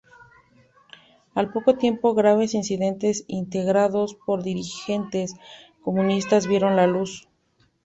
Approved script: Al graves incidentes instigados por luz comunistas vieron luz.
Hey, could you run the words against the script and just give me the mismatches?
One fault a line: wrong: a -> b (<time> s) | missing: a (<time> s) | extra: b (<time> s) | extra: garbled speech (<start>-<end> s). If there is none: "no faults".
extra: poco tiempo (1.5 s)
wrong: luz -> dirigentes (4.4 s)
extra: la (6.8 s)